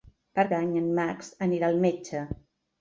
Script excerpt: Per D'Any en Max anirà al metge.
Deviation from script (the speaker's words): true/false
false